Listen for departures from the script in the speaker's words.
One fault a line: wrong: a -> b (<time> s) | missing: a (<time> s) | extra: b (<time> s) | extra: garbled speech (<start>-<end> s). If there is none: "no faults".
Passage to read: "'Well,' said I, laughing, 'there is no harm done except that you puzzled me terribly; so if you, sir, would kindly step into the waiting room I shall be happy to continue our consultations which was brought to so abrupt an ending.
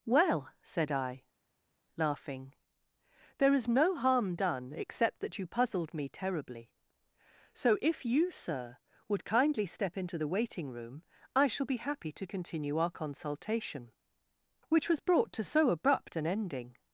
wrong: consultations -> consultation (12.9 s)